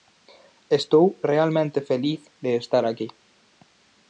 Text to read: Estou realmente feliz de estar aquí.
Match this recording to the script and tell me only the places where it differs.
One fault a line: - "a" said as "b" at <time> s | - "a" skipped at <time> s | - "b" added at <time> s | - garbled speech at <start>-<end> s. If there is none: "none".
none